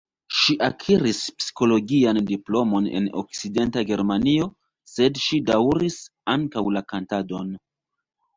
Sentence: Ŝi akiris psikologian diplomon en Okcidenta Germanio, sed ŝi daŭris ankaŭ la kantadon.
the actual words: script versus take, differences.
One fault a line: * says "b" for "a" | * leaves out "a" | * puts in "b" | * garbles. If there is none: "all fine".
all fine